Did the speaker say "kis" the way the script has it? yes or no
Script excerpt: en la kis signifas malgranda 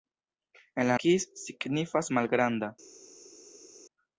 yes